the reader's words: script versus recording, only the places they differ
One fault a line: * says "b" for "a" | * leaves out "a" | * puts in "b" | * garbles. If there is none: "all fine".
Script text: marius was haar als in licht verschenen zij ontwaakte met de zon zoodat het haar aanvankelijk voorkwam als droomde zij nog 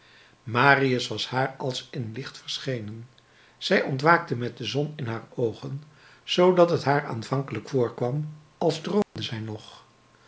* puts in "in haar oogen"